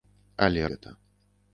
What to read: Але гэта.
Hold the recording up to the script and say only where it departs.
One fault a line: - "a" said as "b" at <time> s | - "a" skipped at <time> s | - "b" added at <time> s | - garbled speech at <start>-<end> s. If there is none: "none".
none